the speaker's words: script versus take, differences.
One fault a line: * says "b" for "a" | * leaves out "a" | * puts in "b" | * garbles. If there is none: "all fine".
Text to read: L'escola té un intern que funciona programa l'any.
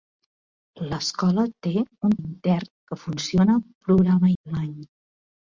all fine